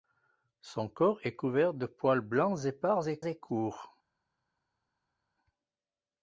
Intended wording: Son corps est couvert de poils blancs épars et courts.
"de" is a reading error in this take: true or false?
false